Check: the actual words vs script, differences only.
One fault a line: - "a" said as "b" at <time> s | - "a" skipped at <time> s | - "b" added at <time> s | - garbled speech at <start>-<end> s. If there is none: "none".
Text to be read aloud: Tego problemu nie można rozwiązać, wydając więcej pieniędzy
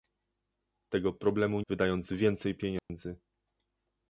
- "nie można rozwiązać" skipped at 1.6 s